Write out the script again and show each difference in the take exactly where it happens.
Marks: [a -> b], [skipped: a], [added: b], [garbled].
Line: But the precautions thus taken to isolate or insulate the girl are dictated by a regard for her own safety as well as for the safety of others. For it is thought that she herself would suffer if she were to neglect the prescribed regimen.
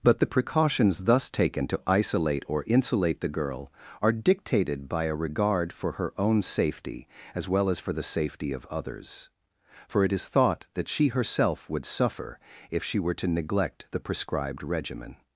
But the precautions thus taken to isolate or insulate the girl are dictated by a regard for her own safety as well as for the safety of others. For it is thought that she herself would suffer if she were to neglect the prescribed regimen.